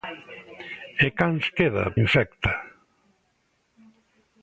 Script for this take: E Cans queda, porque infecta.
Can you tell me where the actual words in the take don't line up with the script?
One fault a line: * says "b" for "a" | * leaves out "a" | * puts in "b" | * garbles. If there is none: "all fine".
* leaves out "porque"